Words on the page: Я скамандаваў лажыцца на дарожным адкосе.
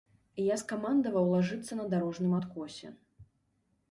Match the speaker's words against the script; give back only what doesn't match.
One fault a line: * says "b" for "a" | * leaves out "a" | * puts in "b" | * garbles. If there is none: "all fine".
all fine